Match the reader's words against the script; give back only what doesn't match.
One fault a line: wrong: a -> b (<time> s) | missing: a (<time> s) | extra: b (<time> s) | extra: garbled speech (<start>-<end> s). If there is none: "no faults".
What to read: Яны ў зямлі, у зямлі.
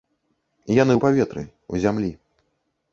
wrong: зямлі -> паветры (1.1 s)